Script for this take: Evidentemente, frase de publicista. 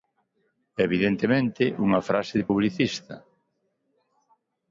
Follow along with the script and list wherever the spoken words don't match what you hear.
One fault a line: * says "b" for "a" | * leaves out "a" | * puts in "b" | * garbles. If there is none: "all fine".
* puts in "unha"